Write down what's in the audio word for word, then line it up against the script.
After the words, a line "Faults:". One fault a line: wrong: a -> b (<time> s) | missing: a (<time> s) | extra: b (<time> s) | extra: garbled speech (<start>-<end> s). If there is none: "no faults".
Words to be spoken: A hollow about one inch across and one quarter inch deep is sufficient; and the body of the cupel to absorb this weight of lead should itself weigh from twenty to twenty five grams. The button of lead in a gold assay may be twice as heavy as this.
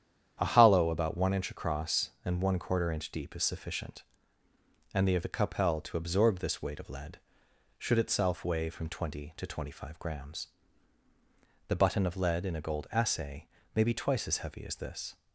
A hollow about one inch across and one quarter inch deep is sufficient; and the of the cupel to absorb this weight of lead should itself weigh from twenty to twenty five grams. The button of lead in a gold assay may be twice as heavy as this.
Faults:
missing: body (5.2 s)